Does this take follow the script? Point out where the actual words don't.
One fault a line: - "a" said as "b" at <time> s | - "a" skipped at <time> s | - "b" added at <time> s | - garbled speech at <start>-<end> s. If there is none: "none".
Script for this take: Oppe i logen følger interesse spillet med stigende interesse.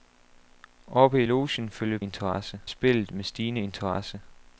none